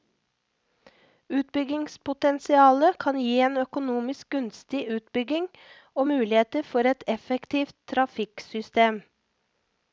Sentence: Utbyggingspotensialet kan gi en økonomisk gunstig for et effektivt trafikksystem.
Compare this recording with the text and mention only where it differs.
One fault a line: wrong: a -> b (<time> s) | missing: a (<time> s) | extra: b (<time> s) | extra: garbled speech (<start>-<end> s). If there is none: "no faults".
extra: utbygging og muligheter (5.0 s)